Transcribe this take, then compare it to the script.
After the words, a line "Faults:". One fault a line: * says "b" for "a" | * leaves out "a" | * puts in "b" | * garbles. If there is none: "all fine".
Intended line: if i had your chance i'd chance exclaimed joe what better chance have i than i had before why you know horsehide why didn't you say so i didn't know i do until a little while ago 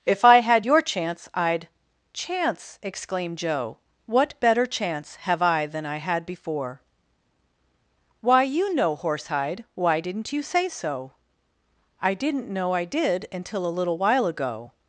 if i had your chance i'd chance exclaimed joe what better chance have i than i had before why you know horsehide why didn't you say so i didn't know i did until a little while ago
Faults:
* says "did" for "do"